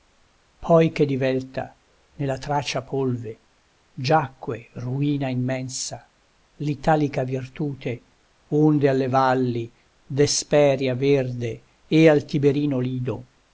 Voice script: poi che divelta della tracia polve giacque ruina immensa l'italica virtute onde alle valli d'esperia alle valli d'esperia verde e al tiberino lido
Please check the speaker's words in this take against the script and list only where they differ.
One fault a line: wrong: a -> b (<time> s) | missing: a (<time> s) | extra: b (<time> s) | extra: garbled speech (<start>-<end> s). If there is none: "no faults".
wrong: della -> nella (2.1 s)
missing: alle valli d'esperia (10.9 s)